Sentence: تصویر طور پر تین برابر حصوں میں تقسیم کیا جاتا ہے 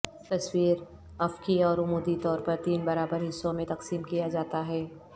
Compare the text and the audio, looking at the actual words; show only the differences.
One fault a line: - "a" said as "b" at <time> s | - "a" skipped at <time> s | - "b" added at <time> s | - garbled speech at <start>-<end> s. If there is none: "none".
- "افقی اور عمودی" added at 1.2 s